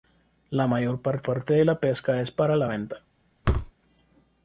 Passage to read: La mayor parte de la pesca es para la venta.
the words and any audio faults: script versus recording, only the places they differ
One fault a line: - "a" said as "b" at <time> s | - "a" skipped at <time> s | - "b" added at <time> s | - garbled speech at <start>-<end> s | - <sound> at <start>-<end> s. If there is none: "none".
- "parte" added at 1.2 s
- thud at 3.4-3.7 s